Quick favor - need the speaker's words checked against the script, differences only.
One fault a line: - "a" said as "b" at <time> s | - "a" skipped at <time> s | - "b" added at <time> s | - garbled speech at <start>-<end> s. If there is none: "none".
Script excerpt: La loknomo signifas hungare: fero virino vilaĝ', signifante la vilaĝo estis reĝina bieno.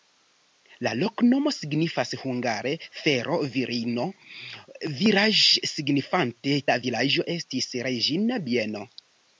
none